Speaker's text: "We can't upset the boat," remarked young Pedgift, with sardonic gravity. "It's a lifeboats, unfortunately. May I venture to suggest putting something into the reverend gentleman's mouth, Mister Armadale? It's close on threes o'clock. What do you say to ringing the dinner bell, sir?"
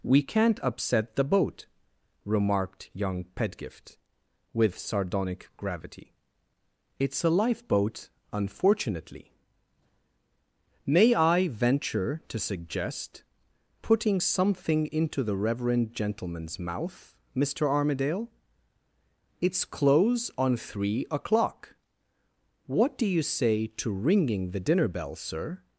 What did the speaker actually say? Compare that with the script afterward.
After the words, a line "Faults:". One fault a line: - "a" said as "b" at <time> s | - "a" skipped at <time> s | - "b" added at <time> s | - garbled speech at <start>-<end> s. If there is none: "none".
"We can't upset the boat," remarked young Pedgift, with sardonic gravity. "It's a lifeboat, unfortunately. May I venture to suggest putting something into the reverend gentleman's mouth, Mister Armadale? It's close on three o'clock. What do you say to ringing the dinner bell, sir?"
Faults:
- "lifeboats" said as "lifeboat" at 7.3 s
- "threes" said as "three" at 20.6 s